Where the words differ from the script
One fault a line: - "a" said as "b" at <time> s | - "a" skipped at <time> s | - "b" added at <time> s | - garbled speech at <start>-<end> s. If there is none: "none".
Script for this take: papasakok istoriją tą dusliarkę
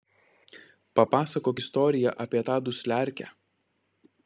- "apie" added at 2.2 s